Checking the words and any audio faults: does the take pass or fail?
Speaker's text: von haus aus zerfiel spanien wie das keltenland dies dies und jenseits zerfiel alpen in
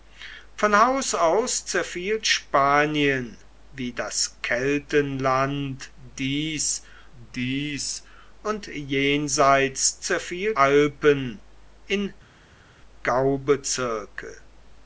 pass